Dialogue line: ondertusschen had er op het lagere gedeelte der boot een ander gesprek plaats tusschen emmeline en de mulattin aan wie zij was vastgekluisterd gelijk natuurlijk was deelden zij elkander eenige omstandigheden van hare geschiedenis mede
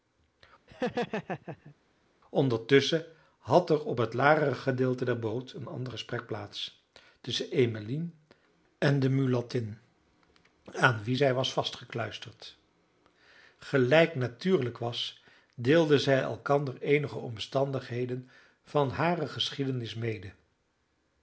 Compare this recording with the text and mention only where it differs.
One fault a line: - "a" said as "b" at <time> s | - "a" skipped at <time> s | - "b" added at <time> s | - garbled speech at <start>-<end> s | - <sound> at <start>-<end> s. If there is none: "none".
- laugh at 0.7-1.8 s